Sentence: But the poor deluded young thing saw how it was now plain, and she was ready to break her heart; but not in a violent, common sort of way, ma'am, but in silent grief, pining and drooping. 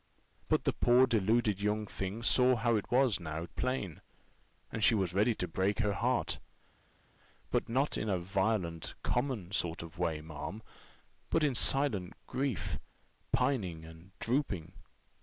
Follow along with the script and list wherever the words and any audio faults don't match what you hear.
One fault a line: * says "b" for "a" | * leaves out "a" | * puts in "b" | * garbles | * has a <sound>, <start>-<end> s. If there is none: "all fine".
all fine